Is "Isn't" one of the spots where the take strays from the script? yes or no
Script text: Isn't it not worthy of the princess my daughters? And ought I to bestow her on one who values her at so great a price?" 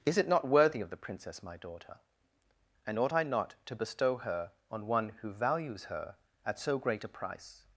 yes